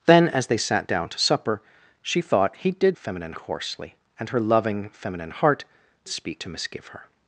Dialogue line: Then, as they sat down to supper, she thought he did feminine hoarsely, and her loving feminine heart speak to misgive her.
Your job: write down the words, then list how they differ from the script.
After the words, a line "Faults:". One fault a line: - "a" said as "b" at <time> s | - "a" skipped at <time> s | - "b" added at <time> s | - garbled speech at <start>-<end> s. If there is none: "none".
Then, as they sat down to supper, she thought he did feminine hoarsely, and her loving feminine heart speak to misgive her.
Faults:
none